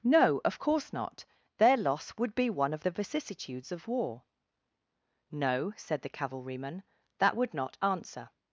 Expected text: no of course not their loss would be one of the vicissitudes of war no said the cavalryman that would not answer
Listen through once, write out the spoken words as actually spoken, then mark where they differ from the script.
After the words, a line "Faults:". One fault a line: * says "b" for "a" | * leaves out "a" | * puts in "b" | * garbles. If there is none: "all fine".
no of course not their loss would be one of the vicissitudes of war no said the cavalryman that would not answer
Faults:
all fine